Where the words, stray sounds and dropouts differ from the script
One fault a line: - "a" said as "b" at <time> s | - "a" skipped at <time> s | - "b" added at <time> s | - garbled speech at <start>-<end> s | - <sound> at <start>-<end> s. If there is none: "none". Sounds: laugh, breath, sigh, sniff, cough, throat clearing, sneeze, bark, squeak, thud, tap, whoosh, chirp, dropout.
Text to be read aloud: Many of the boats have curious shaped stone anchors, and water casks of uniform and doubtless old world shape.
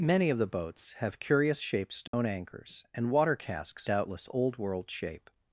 - dropout at 2.1-2.1 s
- "of uniform and" skipped at 3.9 s